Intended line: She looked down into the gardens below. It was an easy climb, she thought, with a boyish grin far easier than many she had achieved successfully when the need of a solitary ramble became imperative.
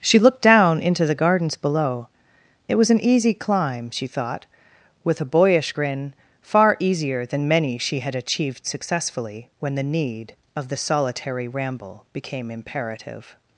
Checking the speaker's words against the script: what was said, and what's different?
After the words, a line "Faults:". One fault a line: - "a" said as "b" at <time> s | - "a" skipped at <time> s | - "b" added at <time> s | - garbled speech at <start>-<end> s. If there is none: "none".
She looked down into the gardens below. It was an easy climb, she thought, with a boyish grin far easier than many she had achieved successfully when the need of the solitary ramble became imperative.
Faults:
- "a" said as "the" at 10.7 s